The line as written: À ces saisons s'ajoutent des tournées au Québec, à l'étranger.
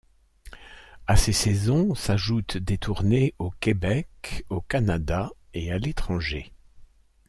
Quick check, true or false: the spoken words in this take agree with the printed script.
false